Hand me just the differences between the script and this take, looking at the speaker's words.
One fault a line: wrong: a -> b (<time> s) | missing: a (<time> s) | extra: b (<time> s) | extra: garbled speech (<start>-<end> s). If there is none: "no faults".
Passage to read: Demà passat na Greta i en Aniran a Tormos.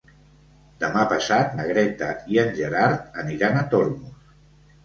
extra: Gerard (2.6 s)